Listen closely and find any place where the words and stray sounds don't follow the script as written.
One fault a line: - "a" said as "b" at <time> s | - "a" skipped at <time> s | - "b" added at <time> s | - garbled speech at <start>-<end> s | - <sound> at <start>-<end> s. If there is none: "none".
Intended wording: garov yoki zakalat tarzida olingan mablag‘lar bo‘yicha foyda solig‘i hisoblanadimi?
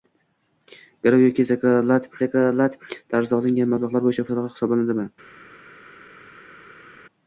- "zakalat" added at 2.2 s
- "foyda" skipped at 4.3 s